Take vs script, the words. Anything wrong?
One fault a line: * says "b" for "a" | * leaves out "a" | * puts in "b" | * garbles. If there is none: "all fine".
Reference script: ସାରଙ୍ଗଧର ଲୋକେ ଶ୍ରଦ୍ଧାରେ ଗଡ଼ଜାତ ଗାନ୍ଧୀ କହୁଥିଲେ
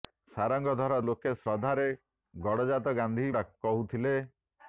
all fine